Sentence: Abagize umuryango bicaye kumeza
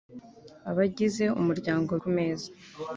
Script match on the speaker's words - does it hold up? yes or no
no